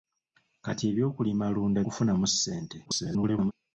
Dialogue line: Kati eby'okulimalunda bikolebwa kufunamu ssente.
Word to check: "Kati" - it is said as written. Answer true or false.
true